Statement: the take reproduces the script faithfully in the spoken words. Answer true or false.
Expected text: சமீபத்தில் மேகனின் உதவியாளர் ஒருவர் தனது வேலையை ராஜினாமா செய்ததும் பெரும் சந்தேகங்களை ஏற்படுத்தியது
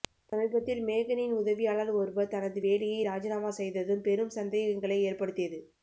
true